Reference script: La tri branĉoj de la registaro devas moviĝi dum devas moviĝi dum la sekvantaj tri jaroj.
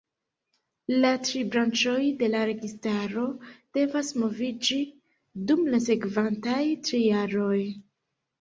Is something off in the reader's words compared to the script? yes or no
yes